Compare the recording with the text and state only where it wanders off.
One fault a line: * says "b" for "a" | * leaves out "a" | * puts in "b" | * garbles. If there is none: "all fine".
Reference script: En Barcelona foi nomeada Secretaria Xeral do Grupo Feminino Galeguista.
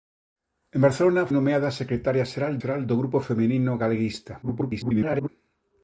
* leaves out "foi"
* puts in "Xeral"
* garbles